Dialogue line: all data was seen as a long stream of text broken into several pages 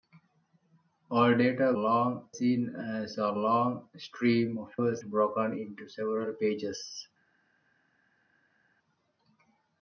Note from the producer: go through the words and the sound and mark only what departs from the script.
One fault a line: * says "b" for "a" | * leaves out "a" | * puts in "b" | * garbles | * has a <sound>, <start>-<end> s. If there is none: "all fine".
* says "long" for "was"
* says "was" for "text"